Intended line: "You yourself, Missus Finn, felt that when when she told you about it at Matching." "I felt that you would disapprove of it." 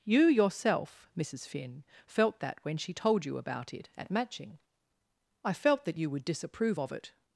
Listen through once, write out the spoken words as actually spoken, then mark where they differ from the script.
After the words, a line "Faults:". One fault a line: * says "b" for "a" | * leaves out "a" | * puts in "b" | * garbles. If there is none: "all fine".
"You yourself, Missus Finn, felt that when she told you about it at Matching." "I felt that you would disapprove of it."
Faults:
* leaves out "when"